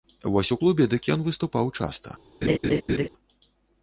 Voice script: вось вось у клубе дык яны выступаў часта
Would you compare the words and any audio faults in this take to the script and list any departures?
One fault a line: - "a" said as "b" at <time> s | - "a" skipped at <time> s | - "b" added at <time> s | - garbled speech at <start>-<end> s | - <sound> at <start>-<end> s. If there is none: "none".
- "вось" skipped at 0.5 s
- "яны" said as "ён" at 1.2 s
- laugh at 2.4-3.1 s